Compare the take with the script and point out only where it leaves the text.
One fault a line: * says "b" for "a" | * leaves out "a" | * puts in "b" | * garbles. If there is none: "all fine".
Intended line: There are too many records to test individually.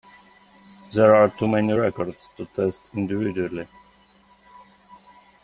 all fine